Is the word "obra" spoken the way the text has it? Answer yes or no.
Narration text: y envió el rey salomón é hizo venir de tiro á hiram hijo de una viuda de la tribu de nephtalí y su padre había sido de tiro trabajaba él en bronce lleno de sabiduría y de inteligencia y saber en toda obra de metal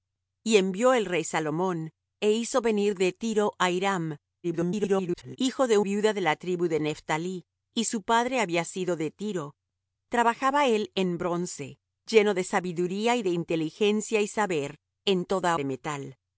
no